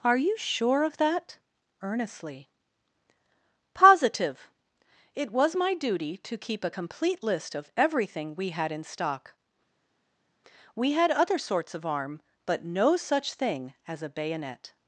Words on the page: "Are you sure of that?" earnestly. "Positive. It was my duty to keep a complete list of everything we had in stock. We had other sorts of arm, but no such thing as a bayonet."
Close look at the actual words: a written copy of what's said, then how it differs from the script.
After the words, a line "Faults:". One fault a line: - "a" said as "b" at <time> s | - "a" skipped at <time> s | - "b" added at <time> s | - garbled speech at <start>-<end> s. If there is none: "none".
"Are you sure of that?" earnestly. "Positive. It was my duty to keep a complete list of everything we had in stock. We had other sorts of arm, but no such thing as a bayonet."
Faults:
none